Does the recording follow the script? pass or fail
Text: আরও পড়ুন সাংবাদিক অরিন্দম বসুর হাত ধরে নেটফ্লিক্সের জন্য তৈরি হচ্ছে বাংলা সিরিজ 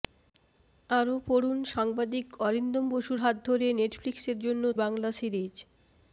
fail